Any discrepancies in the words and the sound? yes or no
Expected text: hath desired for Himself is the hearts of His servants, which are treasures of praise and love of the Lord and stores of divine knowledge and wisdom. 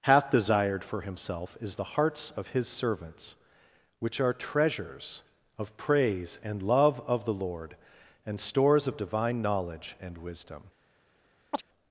yes